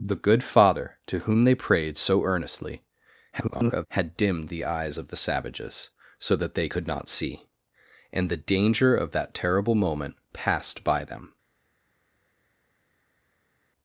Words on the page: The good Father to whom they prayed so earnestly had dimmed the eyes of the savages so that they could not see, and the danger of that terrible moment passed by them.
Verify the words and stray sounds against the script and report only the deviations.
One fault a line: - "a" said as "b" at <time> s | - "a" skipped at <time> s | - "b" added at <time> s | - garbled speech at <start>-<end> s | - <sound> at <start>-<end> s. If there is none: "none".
- garbled speech at 3.3-3.9 s